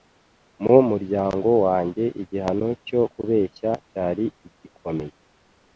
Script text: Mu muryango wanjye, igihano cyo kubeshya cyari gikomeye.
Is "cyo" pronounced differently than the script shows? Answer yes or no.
no